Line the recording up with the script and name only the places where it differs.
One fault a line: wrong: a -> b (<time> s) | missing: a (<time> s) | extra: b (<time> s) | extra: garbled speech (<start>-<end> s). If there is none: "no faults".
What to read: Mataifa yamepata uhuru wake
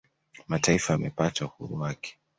no faults